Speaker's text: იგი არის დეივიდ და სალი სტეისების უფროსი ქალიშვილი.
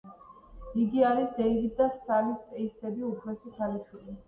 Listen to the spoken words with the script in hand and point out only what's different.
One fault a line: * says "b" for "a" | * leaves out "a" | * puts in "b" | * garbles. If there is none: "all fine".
all fine